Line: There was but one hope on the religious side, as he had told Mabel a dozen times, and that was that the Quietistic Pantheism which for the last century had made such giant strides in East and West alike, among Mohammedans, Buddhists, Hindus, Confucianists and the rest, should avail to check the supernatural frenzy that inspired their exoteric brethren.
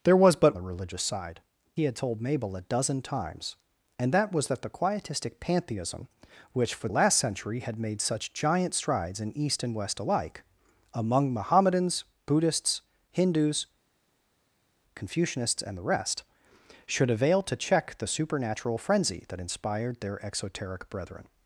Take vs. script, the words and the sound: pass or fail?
fail